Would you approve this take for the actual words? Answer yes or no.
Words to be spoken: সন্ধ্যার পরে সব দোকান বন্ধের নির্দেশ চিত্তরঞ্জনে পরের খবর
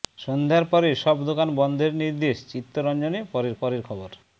no